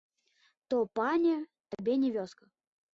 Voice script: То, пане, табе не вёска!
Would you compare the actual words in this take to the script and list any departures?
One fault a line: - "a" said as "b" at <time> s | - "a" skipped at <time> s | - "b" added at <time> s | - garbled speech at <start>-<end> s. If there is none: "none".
none